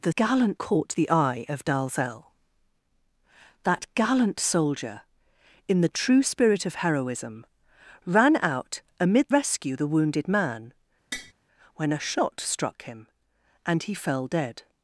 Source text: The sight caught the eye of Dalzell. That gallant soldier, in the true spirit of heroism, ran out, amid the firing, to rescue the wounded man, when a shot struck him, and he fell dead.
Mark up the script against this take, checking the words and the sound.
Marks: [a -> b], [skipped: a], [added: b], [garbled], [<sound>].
The [sight -> gallant] caught the eye of Dalzell. That gallant soldier, in the true spirit of heroism, ran out, amid [skipped: the firing, to] rescue the wounded man, [tap] when a shot struck him, and he fell dead.